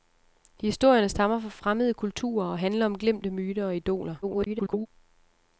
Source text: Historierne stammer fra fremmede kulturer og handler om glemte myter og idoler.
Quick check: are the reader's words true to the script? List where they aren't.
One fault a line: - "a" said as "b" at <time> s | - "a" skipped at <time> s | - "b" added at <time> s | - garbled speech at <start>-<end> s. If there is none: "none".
- garbled speech at 4.2-4.9 s